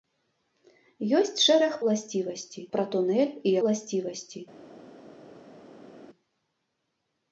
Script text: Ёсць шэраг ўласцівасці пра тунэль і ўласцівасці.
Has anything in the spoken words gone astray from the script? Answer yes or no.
no